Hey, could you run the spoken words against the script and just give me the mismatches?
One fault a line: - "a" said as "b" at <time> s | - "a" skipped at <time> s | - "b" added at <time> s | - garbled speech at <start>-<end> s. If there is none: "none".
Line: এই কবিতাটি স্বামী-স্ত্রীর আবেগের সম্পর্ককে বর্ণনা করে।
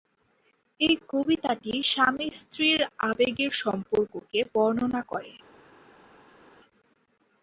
none